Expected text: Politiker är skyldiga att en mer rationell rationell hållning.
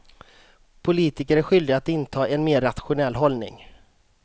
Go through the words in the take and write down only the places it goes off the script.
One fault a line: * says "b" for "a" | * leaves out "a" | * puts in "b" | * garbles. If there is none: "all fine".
* puts in "inta"
* leaves out "rationell"